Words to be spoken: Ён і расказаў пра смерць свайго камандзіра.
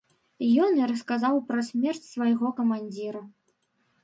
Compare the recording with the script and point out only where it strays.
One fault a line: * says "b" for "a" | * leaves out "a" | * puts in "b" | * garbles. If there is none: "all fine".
all fine